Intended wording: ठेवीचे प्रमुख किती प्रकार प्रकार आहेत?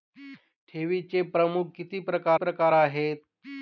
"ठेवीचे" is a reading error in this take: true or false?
false